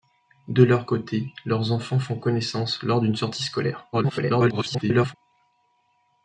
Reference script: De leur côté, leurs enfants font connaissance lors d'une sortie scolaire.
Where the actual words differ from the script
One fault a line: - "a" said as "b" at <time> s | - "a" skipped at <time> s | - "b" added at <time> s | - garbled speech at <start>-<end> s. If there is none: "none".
- garbled speech at 3.9-5.1 s